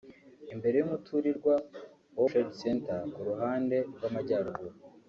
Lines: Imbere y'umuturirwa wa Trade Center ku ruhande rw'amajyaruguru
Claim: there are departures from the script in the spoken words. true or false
false